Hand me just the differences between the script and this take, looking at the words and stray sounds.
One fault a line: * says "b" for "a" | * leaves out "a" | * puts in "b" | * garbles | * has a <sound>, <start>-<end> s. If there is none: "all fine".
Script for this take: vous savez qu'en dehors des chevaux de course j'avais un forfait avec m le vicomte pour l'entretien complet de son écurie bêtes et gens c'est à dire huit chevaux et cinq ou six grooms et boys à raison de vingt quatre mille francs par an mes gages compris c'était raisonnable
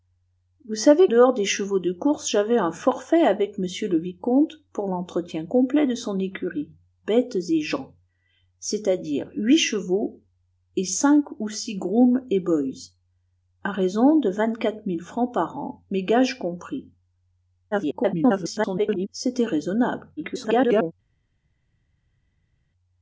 * leaves out "qu'en"
* garbles
* garbles